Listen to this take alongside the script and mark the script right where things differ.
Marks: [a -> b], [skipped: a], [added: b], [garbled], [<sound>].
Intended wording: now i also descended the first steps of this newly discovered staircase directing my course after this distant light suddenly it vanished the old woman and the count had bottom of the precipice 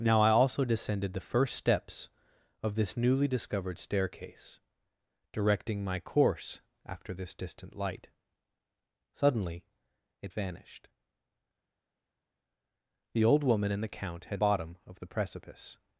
now i also descended the first steps of this newly discovered staircase directing my course after this distant light suddenly it vanished the old woman and the count had bottom of the precipice